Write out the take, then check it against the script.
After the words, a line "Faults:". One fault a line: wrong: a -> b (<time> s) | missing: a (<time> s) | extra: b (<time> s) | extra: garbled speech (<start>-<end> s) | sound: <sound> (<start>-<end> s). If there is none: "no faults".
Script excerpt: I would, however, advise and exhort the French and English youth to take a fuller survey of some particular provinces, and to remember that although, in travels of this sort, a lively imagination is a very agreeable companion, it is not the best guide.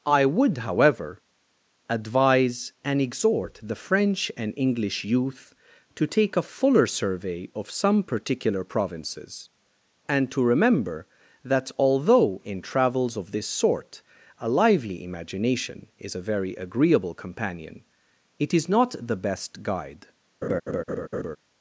I would, however, advise and exhort the French and English youth to take a fuller survey of some particular provinces, and to remember that although, in travels of this sort, a lively imagination is a very agreeable companion, it is not the best guide.
Faults:
sound: laugh (20.4-21.4 s)